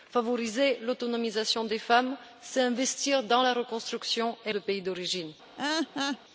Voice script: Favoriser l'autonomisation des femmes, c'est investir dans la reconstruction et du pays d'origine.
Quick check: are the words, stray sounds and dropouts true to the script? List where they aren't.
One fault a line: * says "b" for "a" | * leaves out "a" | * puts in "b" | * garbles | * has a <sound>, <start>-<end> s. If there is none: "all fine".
* has a laugh, 5.6-6.2 s